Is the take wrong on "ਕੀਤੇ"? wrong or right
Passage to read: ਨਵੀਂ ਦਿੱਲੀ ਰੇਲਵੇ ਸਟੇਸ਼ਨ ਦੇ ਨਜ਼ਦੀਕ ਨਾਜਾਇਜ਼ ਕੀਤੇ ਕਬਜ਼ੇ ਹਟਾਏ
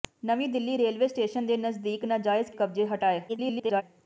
wrong